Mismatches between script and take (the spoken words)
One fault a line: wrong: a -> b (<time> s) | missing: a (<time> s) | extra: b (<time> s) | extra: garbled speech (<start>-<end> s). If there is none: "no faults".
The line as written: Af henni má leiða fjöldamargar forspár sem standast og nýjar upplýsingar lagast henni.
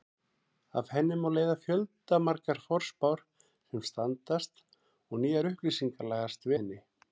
no faults